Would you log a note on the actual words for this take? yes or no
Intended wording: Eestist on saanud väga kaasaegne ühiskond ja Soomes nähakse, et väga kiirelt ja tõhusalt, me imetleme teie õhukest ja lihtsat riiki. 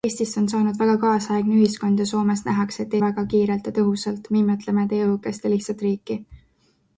no